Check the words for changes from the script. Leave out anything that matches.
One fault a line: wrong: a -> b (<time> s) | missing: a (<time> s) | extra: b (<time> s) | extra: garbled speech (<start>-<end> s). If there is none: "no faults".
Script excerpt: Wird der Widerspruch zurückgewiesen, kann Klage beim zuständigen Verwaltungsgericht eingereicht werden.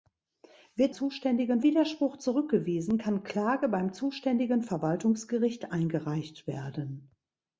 wrong: der -> zuständigen (0.9 s)